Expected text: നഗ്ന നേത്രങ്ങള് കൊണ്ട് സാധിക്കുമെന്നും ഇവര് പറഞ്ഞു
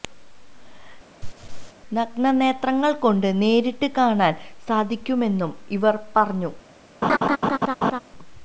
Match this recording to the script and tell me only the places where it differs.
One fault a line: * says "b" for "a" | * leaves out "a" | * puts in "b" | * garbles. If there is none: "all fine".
* puts in "നേരിട്ട് കാണാന്"